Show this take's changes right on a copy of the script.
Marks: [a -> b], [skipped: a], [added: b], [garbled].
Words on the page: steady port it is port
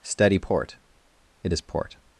steady port it is port